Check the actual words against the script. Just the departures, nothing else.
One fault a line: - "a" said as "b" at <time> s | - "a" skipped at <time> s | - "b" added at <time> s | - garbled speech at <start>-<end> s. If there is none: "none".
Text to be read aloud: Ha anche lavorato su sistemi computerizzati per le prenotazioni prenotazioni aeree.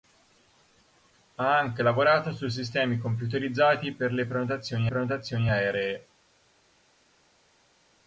none